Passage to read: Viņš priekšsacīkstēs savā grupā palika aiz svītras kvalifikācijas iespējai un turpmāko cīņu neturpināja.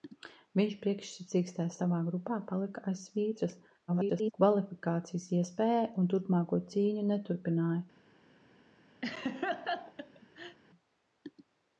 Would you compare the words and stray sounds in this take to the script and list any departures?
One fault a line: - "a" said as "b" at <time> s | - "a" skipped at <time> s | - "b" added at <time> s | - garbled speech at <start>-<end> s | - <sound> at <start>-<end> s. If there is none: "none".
- garbled speech at 3.9-4.3 s
- laugh at 9.0-10.6 s